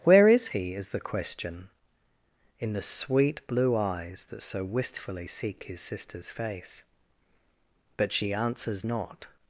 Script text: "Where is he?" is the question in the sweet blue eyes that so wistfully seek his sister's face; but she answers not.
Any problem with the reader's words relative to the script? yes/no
no